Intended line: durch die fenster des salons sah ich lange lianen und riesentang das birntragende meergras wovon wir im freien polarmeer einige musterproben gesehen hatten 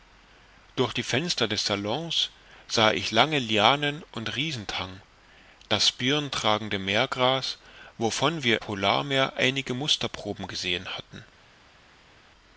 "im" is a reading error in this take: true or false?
true